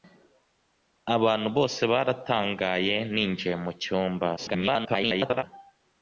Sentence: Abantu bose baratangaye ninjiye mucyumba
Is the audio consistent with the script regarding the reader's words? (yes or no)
no